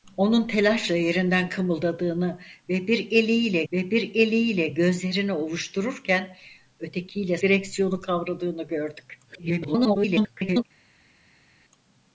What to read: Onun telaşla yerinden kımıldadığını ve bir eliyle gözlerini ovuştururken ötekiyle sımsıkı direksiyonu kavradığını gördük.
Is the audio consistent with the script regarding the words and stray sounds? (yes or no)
no